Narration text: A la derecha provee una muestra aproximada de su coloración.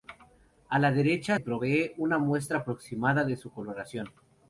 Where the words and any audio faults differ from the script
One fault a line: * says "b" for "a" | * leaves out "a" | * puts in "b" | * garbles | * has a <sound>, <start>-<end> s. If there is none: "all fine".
all fine